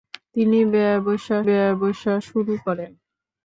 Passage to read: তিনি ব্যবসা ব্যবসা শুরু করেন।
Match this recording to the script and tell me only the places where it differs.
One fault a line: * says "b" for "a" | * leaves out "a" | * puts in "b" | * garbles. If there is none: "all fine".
all fine